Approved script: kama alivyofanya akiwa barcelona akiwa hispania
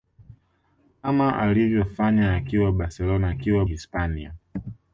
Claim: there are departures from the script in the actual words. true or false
false